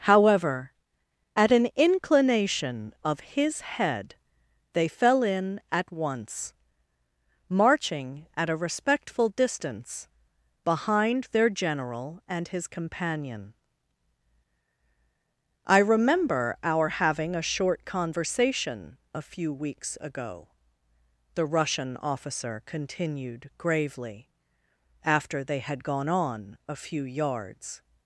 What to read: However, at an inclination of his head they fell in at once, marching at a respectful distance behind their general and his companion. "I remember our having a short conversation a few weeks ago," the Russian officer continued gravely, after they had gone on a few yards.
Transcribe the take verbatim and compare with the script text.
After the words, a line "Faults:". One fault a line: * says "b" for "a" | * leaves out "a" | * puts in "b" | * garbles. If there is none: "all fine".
However, at an inclination of his head they fell in at once, marching at a respectful distance behind their general and his companion. "I remember our having a short conversation a few weeks ago," the Russian officer continued gravely, after they had gone on a few yards.
Faults:
all fine